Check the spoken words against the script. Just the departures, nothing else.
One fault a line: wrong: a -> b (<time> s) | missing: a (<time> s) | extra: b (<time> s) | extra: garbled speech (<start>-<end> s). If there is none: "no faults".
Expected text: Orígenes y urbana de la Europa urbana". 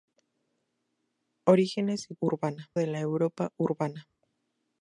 no faults